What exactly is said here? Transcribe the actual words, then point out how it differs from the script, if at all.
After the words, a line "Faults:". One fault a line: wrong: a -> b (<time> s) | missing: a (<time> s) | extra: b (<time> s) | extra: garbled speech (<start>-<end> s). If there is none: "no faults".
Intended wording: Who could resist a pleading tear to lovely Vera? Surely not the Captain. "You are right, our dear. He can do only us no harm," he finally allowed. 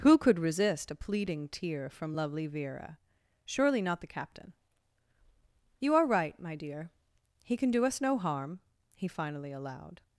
Who could resist a pleading tear from lovely Vera? Surely not the Captain. "You are right, my dear. He can do us no harm," he finally allowed.
Faults:
wrong: to -> from (1.9 s)
wrong: our -> my (6.4 s)
missing: only (7.8 s)